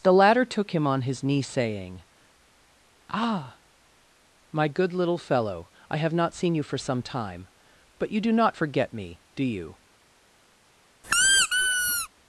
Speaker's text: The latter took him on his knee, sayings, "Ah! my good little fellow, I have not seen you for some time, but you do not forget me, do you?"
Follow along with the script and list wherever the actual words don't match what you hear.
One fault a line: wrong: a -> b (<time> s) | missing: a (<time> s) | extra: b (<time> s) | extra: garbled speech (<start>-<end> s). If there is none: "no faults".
wrong: sayings -> saying (1.4 s)